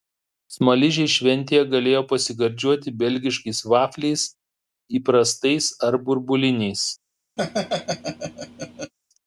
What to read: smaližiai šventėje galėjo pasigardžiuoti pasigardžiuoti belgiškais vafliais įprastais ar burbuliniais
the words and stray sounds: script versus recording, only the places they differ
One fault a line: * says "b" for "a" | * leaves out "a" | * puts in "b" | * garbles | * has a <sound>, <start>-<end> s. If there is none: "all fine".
* leaves out "pasigardžiuoti"
* has a laugh, 7.4-8.9 s